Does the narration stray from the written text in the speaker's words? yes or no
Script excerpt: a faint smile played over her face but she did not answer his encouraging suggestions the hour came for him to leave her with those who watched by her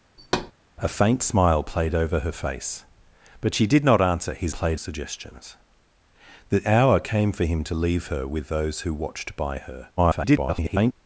yes